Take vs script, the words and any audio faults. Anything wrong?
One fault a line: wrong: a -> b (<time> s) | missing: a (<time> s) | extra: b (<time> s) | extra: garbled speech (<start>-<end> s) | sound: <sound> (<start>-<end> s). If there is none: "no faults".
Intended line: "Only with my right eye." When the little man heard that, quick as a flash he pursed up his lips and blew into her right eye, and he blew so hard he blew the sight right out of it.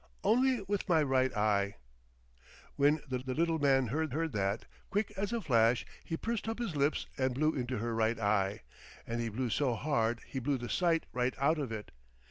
extra: the (3.2 s)
extra: heard (4.1 s)